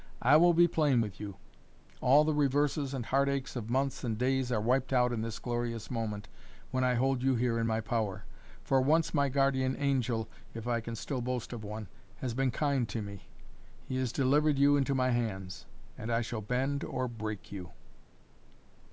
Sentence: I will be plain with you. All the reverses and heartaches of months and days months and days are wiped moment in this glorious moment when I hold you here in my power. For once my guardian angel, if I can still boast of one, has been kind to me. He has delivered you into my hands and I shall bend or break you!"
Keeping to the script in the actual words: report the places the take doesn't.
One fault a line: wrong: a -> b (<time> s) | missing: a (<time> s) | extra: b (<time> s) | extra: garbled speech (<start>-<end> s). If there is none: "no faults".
missing: months and days (4.5 s)
wrong: moment -> out (4.9 s)